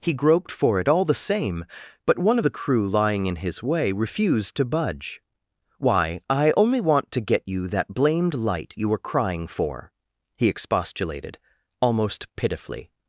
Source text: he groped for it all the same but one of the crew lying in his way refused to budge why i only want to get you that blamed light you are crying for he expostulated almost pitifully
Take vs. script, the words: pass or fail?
fail